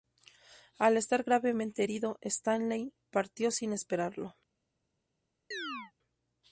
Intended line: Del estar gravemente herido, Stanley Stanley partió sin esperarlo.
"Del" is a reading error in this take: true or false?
true